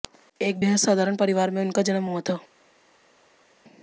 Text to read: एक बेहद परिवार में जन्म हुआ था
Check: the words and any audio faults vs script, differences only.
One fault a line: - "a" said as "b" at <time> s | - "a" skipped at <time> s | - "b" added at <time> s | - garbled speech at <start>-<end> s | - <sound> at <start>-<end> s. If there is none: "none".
- "साधारण" added at 0.8 s
- "उनका" added at 1.6 s